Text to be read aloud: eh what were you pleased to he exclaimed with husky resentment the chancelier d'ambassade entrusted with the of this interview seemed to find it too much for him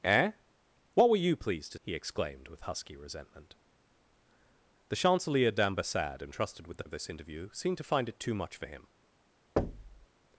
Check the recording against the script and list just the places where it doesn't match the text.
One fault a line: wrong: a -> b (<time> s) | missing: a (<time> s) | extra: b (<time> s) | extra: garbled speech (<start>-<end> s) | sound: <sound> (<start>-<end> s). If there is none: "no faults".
sound: thud (9.6-10.1 s)